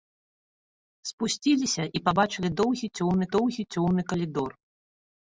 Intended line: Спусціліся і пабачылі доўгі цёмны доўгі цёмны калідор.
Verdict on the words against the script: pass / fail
pass